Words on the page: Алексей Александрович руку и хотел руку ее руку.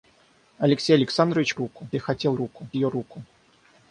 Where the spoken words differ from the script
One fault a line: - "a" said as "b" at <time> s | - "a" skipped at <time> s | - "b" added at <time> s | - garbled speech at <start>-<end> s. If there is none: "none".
none